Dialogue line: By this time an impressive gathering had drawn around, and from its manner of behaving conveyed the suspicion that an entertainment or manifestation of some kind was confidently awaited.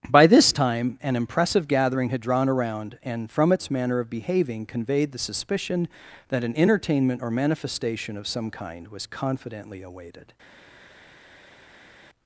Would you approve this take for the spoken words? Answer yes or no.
yes